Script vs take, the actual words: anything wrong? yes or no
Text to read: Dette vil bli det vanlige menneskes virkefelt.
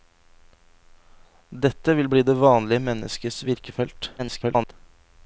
yes